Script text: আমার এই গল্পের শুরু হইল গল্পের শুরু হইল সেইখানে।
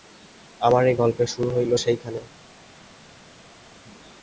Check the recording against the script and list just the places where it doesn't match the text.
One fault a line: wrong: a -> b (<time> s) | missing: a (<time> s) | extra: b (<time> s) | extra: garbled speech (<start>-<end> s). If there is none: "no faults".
missing: গল্পের শুরু হইল (1.7 s)